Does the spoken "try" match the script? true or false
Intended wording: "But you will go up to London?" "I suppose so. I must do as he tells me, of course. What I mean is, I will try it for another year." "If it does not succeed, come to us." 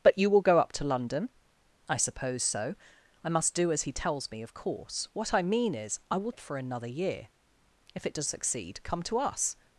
false